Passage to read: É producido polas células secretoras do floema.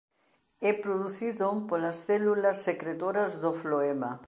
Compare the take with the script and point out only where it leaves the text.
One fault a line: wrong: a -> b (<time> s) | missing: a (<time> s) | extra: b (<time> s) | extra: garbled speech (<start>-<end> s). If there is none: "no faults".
no faults